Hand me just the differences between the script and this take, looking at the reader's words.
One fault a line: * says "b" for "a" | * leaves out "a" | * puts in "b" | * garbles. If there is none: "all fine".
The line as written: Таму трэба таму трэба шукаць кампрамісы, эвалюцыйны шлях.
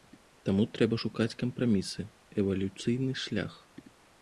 * leaves out "таму трэба"